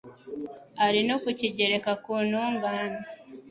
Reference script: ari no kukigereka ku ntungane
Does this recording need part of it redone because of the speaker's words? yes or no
no